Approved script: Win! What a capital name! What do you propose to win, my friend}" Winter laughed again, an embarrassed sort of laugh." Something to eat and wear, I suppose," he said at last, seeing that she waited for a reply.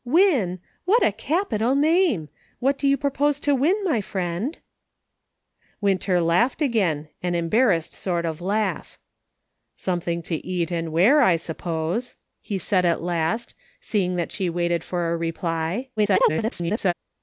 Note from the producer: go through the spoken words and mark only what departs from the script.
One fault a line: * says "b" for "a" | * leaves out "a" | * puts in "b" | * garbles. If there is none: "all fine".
* garbles